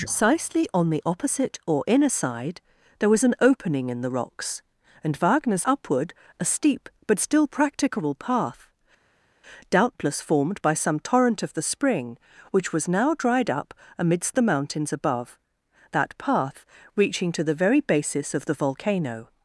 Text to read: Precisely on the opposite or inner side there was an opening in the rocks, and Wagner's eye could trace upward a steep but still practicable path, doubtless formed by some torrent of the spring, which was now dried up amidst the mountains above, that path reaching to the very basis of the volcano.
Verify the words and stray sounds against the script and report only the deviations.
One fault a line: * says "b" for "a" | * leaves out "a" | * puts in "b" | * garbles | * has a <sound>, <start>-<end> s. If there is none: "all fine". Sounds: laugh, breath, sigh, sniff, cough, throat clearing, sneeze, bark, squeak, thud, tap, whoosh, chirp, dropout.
* leaves out "eye could trace"